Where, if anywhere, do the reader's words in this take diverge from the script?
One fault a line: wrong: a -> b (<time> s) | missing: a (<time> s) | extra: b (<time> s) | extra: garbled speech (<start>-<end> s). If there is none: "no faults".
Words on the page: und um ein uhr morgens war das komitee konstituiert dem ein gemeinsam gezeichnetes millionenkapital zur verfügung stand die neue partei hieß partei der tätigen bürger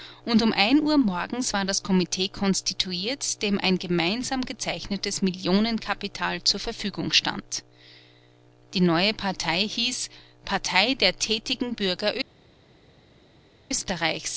no faults